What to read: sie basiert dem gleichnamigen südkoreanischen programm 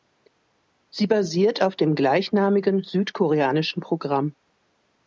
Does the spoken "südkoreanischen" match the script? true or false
true